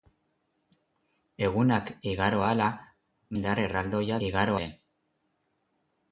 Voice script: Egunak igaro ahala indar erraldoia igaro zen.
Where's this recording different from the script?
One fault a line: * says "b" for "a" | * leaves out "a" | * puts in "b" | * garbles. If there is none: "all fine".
all fine